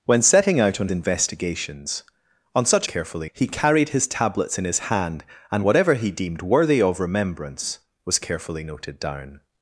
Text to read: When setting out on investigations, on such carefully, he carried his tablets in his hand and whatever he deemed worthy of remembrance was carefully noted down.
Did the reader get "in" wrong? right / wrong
right